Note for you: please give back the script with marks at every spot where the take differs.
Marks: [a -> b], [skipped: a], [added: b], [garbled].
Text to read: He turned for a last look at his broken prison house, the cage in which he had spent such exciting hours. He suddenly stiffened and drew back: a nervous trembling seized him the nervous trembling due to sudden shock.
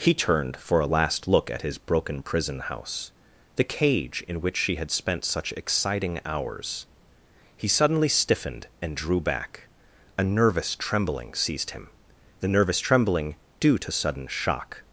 He turned for a last look at his broken prison house, the cage in which [he -> she] had spent such exciting hours. He suddenly stiffened and drew back: a nervous trembling seized him the nervous trembling due to sudden shock.